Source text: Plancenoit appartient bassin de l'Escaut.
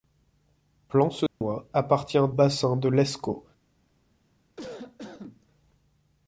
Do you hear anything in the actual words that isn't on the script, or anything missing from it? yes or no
no